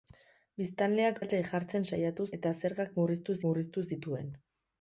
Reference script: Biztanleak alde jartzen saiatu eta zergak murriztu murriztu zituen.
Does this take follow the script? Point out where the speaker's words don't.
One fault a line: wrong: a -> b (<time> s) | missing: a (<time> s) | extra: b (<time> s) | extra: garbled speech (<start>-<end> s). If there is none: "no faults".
no faults